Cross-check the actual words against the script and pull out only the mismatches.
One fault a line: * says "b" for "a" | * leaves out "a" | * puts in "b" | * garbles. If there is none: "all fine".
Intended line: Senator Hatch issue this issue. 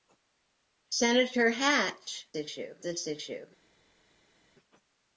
all fine